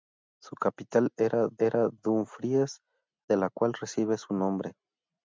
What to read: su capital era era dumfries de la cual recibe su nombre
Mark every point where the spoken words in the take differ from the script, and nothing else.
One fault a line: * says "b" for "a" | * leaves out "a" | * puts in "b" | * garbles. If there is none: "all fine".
all fine